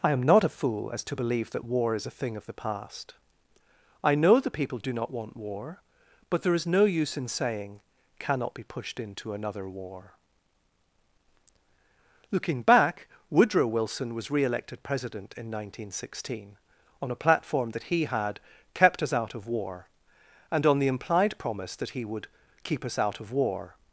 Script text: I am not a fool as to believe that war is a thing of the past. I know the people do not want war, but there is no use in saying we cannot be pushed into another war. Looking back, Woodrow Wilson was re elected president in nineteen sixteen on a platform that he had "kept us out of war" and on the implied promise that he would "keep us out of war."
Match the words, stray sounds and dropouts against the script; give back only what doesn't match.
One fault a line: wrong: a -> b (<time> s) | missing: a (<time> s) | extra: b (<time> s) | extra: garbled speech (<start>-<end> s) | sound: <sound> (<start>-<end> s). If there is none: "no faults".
missing: we (7.8 s)